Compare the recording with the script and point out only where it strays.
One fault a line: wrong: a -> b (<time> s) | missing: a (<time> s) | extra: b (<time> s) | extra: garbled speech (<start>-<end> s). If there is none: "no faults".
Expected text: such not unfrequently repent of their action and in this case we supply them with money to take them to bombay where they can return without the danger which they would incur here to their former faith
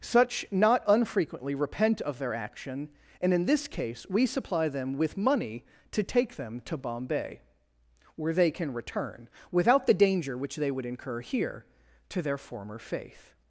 no faults